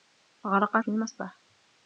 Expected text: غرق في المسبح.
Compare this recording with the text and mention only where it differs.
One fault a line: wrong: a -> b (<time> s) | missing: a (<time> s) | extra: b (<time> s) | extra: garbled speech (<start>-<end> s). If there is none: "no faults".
no faults